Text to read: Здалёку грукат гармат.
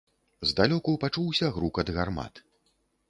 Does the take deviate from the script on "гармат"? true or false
false